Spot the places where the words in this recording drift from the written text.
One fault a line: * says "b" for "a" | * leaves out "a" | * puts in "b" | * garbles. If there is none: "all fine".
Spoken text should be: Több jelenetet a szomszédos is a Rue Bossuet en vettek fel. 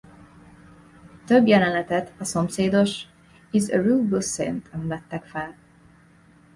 all fine